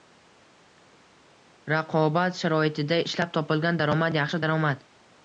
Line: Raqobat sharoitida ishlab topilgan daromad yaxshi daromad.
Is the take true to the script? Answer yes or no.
yes